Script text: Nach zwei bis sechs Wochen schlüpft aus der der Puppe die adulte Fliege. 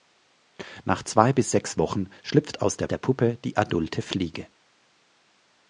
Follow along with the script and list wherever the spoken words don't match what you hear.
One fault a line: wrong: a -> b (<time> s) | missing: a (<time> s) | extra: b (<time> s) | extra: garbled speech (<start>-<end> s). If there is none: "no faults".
no faults